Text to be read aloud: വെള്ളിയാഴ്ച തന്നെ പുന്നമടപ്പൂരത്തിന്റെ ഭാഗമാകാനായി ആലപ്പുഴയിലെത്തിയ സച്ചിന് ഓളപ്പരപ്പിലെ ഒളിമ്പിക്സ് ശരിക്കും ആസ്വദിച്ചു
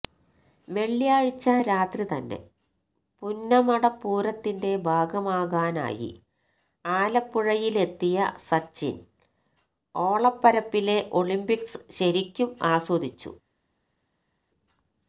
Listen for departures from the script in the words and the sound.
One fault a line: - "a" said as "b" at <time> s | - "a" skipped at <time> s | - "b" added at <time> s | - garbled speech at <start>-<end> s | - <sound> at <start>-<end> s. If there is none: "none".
- "രാത്രി" added at 1.6 s